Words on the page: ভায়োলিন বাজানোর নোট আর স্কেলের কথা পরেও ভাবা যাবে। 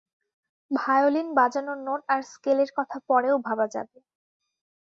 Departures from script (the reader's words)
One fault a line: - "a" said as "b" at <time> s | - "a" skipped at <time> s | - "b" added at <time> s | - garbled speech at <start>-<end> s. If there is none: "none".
none